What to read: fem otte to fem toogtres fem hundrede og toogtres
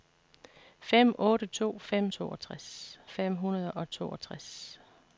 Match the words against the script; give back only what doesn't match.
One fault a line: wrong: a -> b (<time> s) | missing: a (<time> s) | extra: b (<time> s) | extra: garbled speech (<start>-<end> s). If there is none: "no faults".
no faults